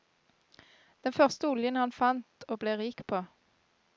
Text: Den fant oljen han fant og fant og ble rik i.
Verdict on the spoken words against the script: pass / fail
fail